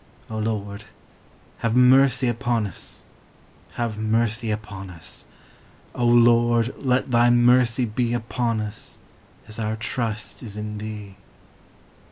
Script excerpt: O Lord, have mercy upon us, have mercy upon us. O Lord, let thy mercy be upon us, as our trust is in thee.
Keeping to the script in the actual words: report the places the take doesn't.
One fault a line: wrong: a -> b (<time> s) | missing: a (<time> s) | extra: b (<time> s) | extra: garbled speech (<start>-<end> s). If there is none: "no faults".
no faults